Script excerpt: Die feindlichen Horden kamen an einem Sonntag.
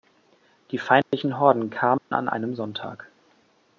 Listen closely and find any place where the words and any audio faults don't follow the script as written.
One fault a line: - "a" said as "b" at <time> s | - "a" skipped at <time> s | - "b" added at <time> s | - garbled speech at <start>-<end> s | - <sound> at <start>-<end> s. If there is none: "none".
- dropout at 1.0-1.1 s
- dropout at 2.0-2.1 s